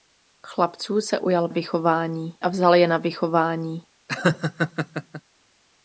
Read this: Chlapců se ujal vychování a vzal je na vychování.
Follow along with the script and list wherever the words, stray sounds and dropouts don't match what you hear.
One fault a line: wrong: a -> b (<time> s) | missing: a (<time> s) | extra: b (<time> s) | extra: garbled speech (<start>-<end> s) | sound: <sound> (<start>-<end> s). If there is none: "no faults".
sound: laugh (4.1-5.2 s)